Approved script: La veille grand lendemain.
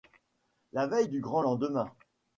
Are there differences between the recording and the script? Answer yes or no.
yes